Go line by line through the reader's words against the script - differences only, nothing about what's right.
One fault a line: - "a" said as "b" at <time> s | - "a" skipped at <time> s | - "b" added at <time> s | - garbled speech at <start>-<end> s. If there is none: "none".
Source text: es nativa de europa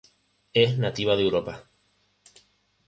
none